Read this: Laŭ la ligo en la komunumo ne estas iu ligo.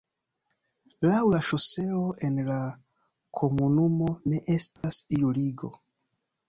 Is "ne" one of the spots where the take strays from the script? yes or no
no